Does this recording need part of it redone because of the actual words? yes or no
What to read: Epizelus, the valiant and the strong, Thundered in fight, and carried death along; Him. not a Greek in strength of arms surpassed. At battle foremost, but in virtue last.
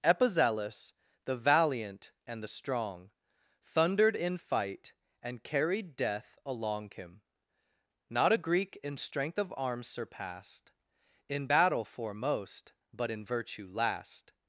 yes